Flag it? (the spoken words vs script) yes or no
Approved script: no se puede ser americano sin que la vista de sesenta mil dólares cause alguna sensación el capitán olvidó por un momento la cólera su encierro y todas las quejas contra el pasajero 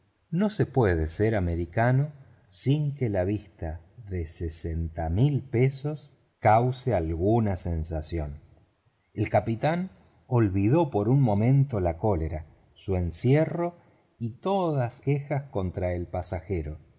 yes